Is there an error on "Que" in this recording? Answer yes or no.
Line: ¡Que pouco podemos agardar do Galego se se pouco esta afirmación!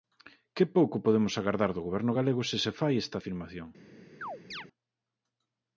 no